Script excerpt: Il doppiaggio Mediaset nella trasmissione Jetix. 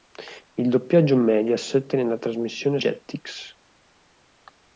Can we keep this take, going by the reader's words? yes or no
yes